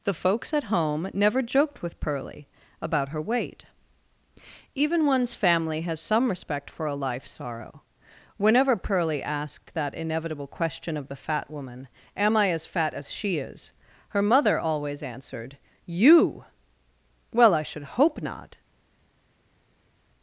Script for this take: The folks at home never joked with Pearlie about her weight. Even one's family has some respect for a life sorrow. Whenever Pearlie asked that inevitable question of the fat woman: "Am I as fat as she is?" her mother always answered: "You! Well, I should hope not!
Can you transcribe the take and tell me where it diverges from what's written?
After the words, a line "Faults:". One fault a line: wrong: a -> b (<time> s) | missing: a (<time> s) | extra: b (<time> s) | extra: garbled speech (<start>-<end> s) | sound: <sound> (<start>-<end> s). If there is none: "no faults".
The folks at home never joked with Pearlie about her weight. Even one's family has some respect for a life sorrow. Whenever Pearlie asked that inevitable question of the fat woman: "Am I as fat as she is?" her mother always answered: "You! Well, I should hope not!
Faults:
no faults